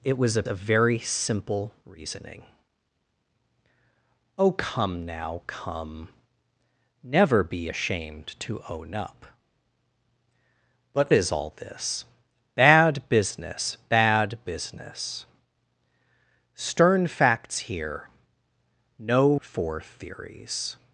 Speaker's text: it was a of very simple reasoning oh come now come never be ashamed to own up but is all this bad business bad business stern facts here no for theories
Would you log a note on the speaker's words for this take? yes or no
no